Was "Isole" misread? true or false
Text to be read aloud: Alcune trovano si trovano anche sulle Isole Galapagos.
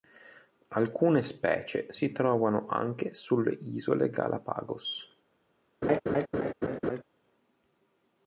false